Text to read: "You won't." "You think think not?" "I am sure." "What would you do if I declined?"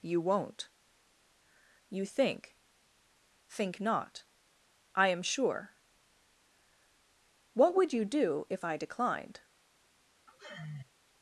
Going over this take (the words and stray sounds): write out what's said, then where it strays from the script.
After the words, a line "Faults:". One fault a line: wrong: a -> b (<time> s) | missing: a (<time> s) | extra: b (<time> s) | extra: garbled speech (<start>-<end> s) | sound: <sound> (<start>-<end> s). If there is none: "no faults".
"You won't." "You think think not?" "I am sure." "What would you do if I declined?"
Faults:
sound: sigh (10.3-10.9 s)